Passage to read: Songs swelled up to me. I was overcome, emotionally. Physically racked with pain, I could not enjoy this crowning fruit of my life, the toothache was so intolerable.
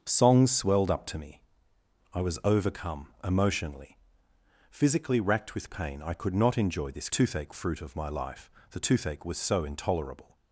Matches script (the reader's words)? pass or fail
fail